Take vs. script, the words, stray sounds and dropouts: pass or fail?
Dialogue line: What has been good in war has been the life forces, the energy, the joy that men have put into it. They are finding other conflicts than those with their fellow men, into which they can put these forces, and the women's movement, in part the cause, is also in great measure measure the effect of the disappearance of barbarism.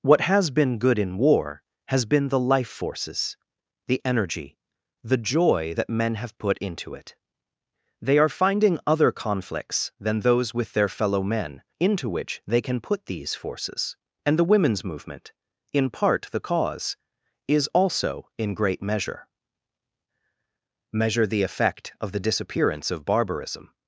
pass